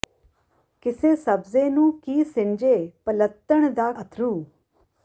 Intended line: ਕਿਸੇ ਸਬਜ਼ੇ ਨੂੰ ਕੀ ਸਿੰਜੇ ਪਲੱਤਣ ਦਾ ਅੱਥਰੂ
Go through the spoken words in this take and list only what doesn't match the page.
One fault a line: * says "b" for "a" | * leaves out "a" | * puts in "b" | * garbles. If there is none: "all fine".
all fine